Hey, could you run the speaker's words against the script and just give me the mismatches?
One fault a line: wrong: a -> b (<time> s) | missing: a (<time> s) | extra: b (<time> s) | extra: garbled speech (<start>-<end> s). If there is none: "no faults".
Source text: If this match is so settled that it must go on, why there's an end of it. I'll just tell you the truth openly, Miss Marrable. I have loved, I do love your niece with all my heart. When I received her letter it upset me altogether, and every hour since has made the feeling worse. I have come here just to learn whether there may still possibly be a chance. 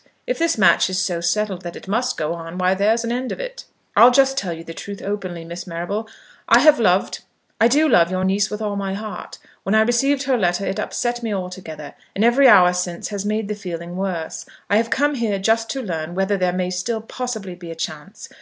no faults